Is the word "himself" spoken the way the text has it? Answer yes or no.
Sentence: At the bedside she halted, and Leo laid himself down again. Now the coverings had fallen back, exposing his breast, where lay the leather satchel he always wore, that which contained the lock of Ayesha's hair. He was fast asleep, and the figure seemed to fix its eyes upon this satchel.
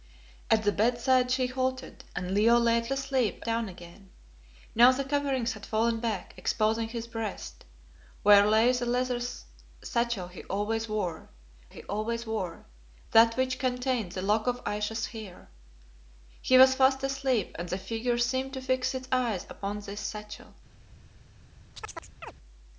no